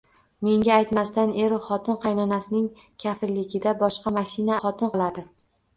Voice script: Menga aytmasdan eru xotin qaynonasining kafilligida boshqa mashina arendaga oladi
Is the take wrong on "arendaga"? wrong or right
wrong